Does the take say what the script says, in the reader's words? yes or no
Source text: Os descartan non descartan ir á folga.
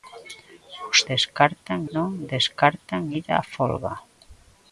yes